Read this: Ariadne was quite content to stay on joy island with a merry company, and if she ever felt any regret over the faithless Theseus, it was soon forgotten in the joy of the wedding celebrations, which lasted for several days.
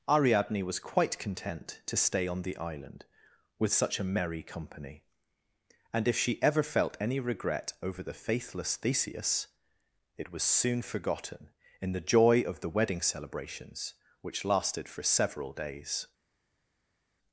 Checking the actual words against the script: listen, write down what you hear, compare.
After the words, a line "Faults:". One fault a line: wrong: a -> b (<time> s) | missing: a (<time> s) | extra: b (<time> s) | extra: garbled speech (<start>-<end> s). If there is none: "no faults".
Ariadne was quite content to stay on the island with such a merry company, and if she ever felt any regret over the faithless Theseus, it was soon forgotten in the joy of the wedding celebrations, which lasted for several days.
Faults:
wrong: joy -> the (2.4 s)
extra: such (3.7 s)